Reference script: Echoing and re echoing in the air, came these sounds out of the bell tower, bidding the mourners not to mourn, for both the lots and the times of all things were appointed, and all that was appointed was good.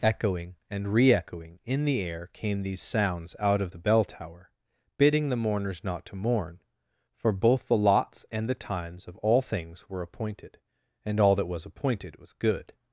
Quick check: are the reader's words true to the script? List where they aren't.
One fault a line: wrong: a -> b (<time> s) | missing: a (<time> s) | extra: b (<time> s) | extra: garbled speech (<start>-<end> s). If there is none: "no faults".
no faults